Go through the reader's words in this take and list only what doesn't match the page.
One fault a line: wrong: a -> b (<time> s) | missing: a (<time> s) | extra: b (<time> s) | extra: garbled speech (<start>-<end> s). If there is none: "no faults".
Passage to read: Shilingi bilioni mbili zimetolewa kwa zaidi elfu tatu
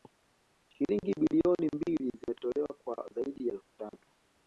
no faults